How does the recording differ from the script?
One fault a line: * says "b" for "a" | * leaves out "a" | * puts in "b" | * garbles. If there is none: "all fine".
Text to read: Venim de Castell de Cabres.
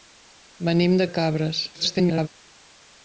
* leaves out "Castell"
* garbles